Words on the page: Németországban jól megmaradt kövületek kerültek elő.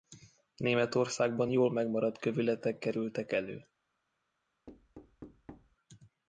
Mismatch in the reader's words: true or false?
false